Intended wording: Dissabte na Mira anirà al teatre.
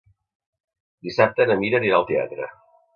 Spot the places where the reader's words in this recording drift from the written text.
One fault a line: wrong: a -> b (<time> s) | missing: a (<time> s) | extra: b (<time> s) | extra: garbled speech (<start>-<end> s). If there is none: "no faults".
no faults